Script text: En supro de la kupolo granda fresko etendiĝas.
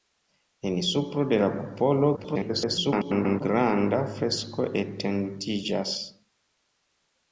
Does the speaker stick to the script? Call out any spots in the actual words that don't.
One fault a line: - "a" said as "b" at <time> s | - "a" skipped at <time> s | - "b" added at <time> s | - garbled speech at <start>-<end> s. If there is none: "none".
- garbled speech at 2.2-3.4 s